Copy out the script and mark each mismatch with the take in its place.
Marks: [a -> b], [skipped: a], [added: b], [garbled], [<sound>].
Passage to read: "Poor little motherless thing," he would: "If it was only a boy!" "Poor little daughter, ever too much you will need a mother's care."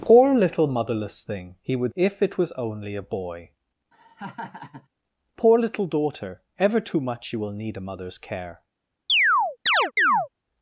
"Poor little motherless thing," he would: "If it was only a boy!" [laugh] "Poor little daughter, ever too much you will need a mother's care." [chirp]